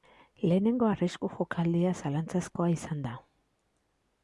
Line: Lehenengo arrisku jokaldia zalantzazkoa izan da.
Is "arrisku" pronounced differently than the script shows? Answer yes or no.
no